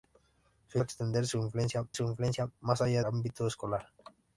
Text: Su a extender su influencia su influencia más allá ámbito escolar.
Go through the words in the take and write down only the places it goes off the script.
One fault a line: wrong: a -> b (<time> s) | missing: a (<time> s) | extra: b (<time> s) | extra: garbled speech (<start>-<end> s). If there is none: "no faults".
no faults